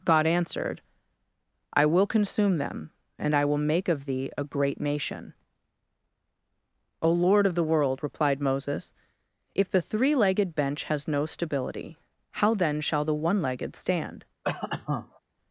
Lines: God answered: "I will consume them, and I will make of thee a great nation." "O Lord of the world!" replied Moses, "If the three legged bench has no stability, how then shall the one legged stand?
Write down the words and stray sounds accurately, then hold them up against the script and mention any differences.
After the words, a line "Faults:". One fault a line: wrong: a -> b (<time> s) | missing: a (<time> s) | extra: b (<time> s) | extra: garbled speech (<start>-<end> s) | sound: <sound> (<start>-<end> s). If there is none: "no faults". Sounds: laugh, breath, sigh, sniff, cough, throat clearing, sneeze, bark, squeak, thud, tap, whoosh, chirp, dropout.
God answered: "I will consume them, and I will make of thee a great nation." "O Lord of the world!" replied Moses, "If the three legged bench has no stability, how then shall the one legged stand?
Faults:
sound: cough (14.4-15.2 s)